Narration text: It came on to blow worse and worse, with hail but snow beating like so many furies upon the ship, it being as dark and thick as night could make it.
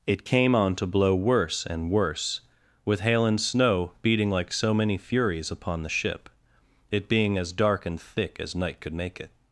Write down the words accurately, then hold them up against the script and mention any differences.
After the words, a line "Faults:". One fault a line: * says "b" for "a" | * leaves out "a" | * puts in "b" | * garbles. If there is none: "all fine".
It came on to blow worse and worse, with hail and snow beating like so many furies upon the ship, it being as dark and thick as night could make it.
Faults:
* says "and" for "but"